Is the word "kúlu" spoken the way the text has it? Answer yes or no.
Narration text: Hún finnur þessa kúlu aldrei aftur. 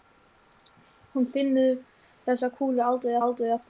yes